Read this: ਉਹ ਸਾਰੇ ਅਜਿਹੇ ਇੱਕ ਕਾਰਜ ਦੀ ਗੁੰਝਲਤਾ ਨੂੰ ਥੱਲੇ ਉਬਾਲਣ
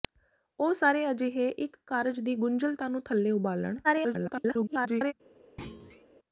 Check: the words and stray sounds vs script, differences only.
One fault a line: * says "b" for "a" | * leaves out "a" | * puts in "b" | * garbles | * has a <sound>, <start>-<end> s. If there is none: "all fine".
* garbles
* has a thud, 5.6-6.1 s